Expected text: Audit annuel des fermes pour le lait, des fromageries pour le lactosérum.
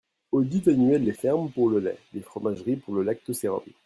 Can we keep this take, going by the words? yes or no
yes